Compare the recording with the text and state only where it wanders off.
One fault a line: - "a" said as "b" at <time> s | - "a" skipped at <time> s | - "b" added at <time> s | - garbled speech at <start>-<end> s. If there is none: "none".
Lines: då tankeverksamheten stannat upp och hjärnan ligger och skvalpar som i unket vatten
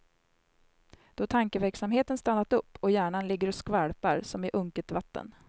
none